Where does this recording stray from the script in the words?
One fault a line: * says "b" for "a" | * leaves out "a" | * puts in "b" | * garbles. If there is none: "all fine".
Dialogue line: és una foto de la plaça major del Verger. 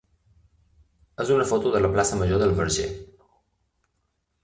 all fine